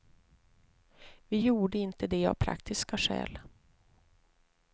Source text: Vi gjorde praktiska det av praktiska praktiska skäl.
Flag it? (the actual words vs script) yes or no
yes